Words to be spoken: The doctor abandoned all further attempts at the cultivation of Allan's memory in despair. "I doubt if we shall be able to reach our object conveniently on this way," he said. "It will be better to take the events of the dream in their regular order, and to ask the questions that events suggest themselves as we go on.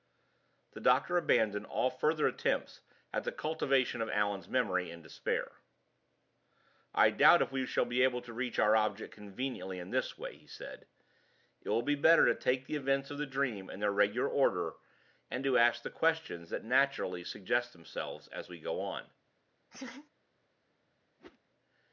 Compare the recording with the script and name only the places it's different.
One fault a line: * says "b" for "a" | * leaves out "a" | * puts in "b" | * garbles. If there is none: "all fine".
* says "in" for "on"
* says "naturally" for "events"